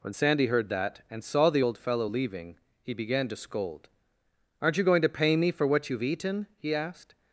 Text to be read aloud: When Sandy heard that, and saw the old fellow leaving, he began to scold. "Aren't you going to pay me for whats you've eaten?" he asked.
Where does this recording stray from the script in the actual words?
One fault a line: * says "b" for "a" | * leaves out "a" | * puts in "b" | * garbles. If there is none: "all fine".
* says "what" for "whats"